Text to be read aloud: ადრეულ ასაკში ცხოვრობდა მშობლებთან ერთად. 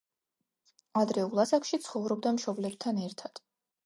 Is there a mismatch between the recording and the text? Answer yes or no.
no